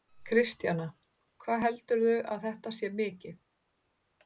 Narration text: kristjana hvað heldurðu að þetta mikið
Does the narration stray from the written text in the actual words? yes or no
yes